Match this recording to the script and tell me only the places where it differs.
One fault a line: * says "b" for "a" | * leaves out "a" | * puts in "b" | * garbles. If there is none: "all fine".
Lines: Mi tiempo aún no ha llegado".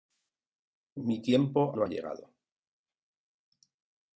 * leaves out "aún"